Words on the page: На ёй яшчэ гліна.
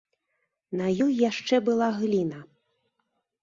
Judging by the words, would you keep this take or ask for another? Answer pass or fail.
fail